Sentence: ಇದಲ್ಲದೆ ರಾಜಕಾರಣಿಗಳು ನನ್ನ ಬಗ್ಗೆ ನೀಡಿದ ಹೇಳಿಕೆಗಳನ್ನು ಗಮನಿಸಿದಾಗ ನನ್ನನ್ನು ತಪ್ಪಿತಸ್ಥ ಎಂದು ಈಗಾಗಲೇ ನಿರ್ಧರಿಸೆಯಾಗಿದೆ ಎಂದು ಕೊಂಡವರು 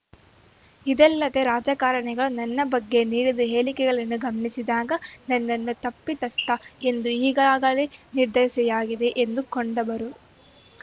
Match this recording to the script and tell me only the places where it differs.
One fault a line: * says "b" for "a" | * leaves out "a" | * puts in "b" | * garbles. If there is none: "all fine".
all fine